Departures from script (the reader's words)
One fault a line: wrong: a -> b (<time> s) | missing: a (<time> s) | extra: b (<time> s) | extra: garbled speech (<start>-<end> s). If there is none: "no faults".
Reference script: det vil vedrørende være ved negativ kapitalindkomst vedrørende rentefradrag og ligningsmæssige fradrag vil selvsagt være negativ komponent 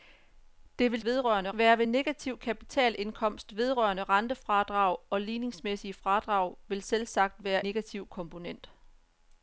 no faults